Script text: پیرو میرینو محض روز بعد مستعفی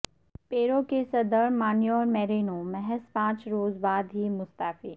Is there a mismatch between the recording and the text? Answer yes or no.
yes